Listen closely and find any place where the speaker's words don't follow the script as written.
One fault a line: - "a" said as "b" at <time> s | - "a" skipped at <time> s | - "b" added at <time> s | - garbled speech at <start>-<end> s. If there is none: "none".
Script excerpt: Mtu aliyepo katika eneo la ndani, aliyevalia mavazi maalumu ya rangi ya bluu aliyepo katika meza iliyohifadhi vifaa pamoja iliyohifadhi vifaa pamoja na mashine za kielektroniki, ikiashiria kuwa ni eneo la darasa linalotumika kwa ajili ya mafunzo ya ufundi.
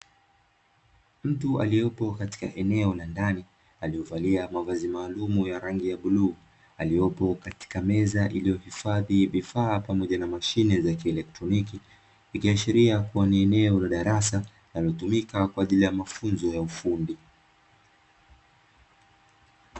- "iliyohifadhi vifaa pamoja" skipped at 10.2 s